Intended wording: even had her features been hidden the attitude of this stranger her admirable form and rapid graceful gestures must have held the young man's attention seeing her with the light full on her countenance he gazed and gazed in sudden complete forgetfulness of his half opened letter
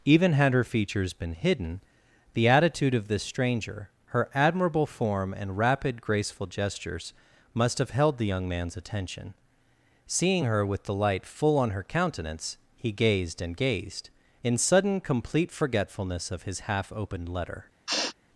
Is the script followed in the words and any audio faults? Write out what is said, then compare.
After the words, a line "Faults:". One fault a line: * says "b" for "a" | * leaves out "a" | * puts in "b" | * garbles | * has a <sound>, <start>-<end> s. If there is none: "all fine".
even had her features been hidden the attitude of this stranger her admirable form and rapid graceful gestures must have held the young man's attention seeing her with the light full on her countenance he gazed and gazed in sudden complete forgetfulness of his half opened letter
Faults:
* has a sniff, 17.9-18.1 s